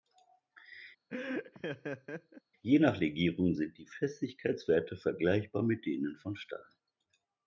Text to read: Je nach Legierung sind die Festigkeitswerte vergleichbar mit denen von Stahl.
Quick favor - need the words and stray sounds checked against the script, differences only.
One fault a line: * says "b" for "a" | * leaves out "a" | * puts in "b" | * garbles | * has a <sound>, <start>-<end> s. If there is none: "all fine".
* has a laugh, 1.1-2.4 s